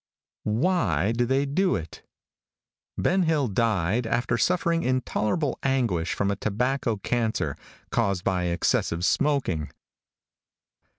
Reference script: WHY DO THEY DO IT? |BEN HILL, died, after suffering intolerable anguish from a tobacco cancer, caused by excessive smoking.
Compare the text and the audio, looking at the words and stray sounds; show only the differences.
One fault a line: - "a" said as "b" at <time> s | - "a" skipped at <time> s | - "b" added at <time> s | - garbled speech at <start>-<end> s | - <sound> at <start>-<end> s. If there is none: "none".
none